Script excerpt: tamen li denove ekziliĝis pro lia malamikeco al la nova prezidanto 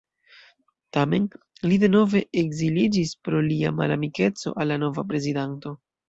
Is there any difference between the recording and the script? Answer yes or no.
no